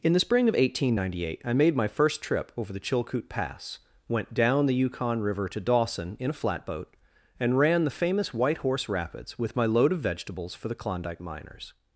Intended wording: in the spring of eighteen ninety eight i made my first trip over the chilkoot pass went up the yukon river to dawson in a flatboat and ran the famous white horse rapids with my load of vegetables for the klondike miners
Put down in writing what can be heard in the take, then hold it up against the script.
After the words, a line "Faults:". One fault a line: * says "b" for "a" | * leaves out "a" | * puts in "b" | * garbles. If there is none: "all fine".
in the spring of eighteen ninety eight i made my first trip over the chilkoot pass went down the yukon river to dawson in a flatboat and ran the famous white horse rapids with my load of vegetables for the klondike miners
Faults:
* says "down" for "up"